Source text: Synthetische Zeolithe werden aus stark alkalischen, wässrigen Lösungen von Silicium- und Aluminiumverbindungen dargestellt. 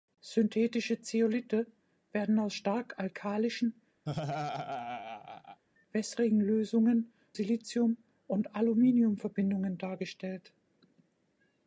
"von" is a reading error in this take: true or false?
true